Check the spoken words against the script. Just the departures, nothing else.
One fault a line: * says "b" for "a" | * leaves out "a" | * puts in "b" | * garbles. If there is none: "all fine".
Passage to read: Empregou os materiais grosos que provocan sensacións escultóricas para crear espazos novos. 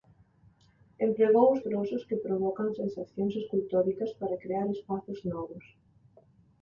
* leaves out "materiais"